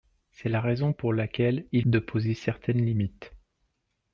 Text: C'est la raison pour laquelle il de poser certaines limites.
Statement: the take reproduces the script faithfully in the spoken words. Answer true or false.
true